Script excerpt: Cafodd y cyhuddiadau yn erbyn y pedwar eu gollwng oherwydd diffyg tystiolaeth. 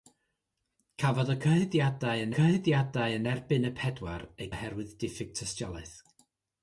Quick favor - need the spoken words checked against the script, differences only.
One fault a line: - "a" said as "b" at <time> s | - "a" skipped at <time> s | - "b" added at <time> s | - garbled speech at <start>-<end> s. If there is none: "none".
- "cyhuddiadau yn" added at 2.4 s
- "gollwng" skipped at 4.5 s